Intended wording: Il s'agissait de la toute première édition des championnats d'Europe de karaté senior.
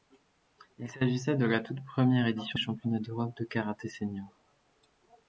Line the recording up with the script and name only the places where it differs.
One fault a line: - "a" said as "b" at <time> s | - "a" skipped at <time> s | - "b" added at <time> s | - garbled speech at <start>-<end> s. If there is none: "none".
- "des" skipped at 2.6 s